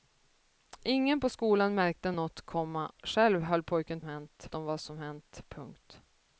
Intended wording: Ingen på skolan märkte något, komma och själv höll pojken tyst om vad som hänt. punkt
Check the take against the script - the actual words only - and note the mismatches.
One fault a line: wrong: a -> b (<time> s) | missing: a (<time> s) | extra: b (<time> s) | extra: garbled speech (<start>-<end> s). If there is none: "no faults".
missing: och (2.9 s)
wrong: tyst -> hänt (4.0 s)